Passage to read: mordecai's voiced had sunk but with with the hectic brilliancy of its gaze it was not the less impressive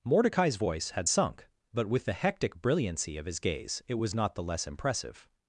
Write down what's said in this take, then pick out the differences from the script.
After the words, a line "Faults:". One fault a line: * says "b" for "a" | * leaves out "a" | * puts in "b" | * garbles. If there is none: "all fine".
mordecai's voice had sunk but with the hectic brilliancy of his gaze it was not the less impressive
Faults:
* says "voice" for "voiced"
* leaves out "with"
* says "his" for "its"